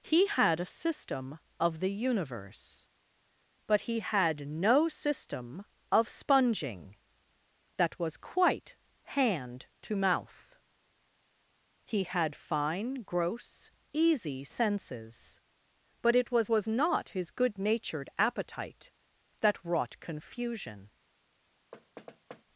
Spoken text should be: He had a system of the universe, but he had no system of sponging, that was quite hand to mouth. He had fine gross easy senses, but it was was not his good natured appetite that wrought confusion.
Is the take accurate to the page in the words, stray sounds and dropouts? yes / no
no